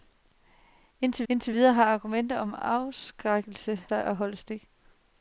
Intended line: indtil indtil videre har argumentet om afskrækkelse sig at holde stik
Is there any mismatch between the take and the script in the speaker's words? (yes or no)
no